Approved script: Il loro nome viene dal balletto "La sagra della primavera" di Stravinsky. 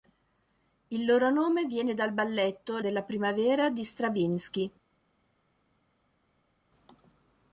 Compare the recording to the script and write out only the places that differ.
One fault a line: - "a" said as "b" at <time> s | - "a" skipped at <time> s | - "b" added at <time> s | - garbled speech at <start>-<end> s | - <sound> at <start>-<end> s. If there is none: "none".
- "La sagra" skipped at 2.8 s